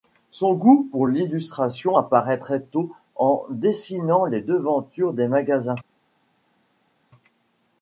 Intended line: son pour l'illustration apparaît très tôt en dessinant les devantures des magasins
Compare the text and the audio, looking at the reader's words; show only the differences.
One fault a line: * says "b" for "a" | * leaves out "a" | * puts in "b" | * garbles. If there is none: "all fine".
* puts in "goût"